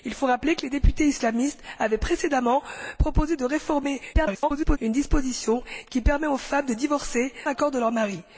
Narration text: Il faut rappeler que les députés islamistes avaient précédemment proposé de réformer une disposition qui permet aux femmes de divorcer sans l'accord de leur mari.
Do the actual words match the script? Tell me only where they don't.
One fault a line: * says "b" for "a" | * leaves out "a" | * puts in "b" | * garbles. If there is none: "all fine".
* garbles
* leaves out "sans"